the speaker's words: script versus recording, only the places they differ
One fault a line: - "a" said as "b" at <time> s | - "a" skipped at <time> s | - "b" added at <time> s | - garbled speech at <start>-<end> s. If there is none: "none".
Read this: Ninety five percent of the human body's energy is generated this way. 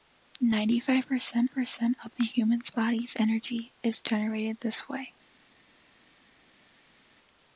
- "percent" added at 1.5 s